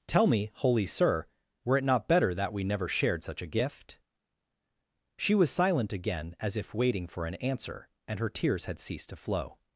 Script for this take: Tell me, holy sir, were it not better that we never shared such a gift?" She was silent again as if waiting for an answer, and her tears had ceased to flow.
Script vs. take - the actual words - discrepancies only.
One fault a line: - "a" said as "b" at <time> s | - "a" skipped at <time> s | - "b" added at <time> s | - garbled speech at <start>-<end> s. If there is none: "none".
none